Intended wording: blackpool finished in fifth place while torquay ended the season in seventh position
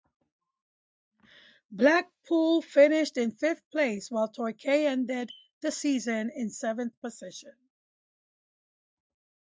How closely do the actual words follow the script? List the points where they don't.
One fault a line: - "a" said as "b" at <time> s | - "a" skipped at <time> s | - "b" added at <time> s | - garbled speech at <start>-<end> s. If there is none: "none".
none